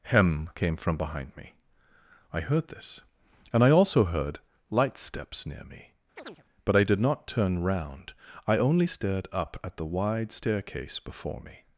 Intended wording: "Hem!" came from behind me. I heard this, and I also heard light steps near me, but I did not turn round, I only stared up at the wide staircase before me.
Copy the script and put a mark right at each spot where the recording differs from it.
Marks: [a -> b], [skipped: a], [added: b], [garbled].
"Hem!" came from behind me. I heard this, and I also heard light steps near me, but I did not turn round, I only stared up at the wide staircase before me.